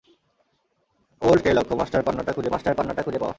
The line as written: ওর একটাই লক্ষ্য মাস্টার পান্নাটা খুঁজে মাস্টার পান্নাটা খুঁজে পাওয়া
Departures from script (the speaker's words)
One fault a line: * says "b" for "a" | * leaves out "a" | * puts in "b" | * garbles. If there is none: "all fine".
all fine